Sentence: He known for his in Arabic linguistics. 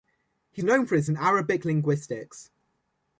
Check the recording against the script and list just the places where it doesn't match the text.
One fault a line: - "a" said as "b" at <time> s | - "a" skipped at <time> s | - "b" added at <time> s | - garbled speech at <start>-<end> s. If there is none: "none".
none